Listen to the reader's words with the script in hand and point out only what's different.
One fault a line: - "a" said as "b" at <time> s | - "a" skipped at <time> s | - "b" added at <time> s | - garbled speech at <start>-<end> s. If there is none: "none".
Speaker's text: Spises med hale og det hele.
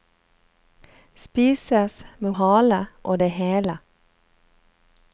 none